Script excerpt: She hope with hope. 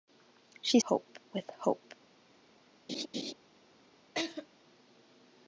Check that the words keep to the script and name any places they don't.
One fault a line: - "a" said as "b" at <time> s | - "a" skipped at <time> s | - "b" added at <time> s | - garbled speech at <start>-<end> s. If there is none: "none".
none